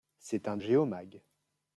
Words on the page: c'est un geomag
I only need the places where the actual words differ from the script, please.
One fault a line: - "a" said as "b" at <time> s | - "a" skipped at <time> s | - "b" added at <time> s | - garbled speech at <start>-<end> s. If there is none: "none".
none